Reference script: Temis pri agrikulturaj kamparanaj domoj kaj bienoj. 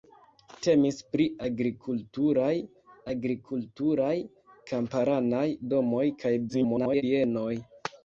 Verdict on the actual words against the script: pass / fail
fail